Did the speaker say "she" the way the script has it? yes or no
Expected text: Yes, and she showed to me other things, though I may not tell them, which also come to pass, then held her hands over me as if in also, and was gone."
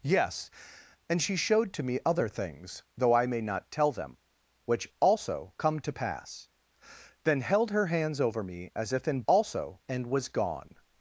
yes